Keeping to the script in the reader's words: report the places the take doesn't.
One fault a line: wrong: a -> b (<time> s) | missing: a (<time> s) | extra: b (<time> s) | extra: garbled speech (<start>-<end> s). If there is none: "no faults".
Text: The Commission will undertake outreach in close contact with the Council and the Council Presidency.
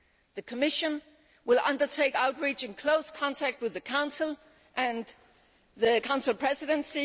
no faults